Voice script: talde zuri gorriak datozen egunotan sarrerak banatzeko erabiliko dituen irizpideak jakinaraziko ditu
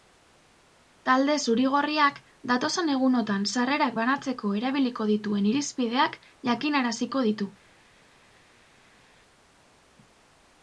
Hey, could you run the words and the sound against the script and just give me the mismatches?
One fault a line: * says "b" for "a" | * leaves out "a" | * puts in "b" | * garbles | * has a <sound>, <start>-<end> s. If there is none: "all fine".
all fine